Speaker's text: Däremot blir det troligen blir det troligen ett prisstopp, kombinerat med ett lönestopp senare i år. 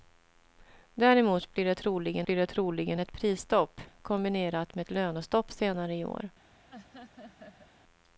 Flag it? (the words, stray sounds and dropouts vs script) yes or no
yes